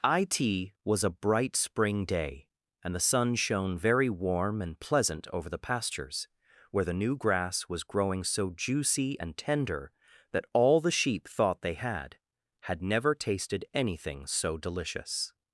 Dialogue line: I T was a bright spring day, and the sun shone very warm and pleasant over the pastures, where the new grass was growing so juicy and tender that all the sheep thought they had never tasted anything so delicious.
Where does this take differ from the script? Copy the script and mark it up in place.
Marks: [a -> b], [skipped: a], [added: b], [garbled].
I T was a bright spring day, and the sun shone very warm and pleasant over the pastures, where the new grass was growing so juicy and tender that all the sheep thought they had [added: had] never tasted anything so delicious.